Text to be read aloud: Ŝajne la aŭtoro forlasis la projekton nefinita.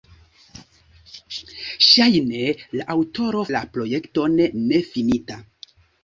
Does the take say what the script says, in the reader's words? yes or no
no